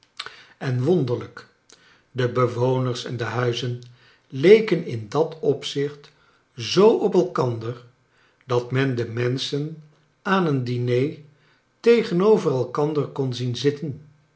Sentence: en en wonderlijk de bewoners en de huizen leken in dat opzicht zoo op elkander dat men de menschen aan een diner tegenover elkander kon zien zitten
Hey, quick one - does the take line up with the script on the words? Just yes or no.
no